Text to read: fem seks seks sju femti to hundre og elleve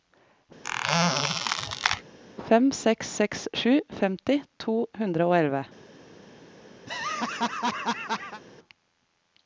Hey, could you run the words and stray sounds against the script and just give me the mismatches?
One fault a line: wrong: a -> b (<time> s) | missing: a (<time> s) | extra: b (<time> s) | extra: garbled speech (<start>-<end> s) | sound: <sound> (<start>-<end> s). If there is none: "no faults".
sound: squeak (0.6-2.0 s)
sound: laugh (6.9-8.4 s)